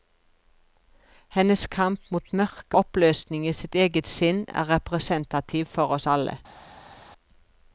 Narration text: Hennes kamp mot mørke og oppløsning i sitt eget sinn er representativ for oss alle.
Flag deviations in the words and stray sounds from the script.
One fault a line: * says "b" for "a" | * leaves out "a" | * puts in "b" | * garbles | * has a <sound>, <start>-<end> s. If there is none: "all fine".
* leaves out "og"